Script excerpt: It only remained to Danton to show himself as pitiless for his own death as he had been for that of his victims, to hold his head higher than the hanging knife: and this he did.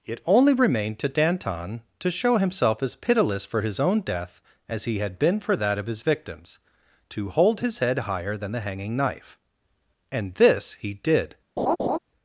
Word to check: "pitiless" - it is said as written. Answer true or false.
true